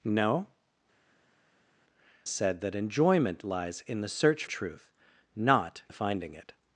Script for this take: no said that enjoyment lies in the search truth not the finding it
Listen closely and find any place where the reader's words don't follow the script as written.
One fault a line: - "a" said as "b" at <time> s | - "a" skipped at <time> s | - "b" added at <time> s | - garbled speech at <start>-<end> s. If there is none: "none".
none